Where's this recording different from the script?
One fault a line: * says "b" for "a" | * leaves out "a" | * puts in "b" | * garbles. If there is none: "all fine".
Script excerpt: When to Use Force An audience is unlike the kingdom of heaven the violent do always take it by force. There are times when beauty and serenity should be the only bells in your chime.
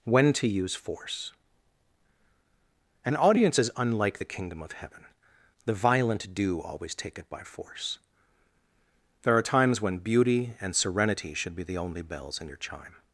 all fine